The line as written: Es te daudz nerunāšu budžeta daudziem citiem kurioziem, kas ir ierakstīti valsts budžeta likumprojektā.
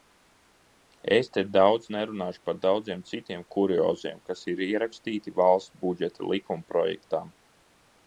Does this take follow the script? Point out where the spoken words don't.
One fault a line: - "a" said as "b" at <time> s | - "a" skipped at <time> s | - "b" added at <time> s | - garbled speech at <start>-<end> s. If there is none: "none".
- "budžeta" said as "par" at 2.5 s